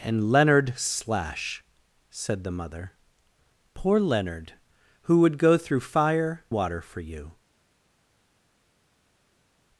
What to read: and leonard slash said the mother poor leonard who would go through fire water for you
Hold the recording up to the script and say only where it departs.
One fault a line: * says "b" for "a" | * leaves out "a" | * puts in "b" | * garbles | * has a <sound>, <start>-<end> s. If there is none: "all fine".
all fine